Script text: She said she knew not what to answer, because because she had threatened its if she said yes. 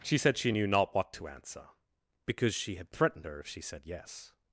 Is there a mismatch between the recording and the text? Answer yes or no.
yes